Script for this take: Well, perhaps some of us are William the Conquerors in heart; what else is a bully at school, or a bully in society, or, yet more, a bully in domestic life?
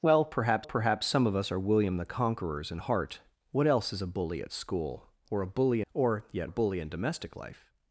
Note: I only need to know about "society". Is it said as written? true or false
false